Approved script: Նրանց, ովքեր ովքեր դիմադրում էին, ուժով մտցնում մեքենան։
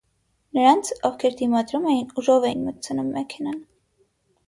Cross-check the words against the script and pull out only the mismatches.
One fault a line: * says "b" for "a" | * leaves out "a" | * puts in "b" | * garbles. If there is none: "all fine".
* leaves out "ովքեր"
* puts in "էին"